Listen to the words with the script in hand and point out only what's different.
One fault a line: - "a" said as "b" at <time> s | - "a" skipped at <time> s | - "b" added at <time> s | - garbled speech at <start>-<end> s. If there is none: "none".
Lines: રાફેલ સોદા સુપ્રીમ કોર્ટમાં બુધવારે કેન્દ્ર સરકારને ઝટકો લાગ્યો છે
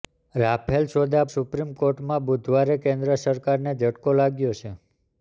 none